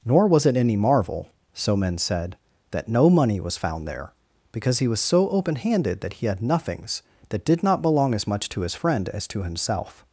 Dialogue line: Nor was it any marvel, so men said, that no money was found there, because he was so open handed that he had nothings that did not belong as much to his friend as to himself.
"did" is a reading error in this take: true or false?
false